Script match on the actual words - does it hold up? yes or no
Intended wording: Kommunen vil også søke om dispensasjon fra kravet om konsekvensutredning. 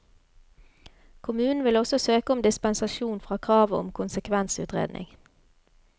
yes